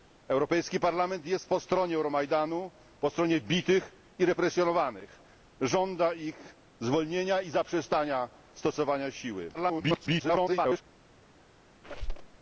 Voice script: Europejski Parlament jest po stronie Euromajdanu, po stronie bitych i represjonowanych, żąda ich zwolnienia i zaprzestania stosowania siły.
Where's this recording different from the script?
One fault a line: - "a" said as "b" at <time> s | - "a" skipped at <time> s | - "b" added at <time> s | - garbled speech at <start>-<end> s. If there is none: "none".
- garbled speech at 9.5-10.8 s